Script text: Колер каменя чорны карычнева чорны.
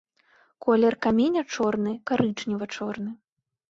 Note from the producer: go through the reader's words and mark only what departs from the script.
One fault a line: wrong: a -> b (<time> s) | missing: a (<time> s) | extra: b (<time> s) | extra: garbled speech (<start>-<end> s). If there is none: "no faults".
no faults